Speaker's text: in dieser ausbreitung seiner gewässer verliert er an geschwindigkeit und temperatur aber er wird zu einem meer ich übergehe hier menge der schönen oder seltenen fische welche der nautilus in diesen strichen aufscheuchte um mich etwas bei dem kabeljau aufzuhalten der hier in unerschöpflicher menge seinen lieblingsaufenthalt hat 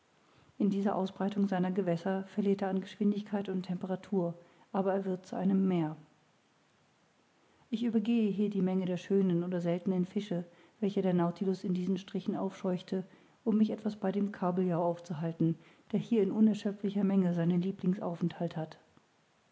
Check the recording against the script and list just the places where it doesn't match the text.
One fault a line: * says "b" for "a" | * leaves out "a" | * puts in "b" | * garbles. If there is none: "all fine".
* puts in "die"